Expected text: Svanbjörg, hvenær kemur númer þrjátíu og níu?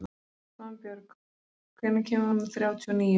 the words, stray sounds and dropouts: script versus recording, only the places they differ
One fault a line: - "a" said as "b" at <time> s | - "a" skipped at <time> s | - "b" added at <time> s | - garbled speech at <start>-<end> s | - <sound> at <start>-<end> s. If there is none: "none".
none